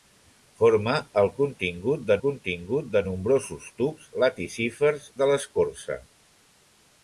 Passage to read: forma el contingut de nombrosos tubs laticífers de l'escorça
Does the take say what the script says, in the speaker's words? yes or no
no